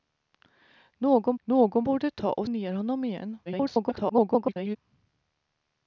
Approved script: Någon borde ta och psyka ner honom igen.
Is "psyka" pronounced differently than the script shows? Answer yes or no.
yes